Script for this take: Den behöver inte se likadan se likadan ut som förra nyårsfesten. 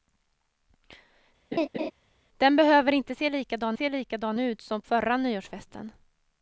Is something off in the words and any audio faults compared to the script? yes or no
yes